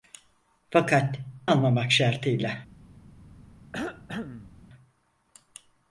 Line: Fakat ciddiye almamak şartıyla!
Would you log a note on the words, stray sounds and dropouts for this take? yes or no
yes